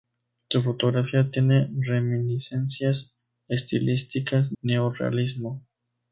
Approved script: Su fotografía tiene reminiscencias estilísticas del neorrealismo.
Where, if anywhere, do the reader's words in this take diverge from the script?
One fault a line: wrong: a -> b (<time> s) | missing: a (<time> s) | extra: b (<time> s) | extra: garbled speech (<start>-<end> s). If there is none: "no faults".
missing: del (4.5 s)